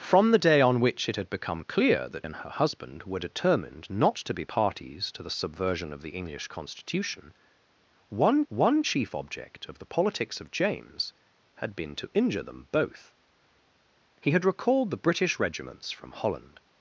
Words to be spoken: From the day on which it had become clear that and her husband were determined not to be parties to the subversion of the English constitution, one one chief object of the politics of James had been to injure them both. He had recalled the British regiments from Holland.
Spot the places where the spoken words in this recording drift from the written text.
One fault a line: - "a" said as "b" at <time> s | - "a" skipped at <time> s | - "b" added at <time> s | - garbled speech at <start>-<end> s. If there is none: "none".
none